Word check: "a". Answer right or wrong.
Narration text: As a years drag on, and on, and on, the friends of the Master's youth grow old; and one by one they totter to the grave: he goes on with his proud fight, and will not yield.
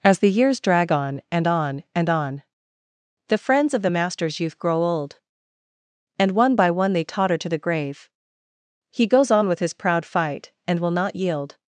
wrong